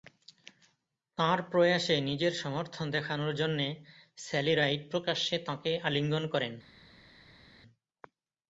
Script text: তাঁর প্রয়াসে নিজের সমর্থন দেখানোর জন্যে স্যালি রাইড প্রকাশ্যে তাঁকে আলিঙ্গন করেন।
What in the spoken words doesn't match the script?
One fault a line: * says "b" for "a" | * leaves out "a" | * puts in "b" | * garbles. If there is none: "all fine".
all fine